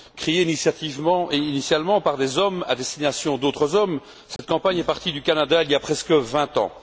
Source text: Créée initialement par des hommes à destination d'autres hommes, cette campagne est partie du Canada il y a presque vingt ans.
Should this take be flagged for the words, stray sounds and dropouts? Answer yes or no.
yes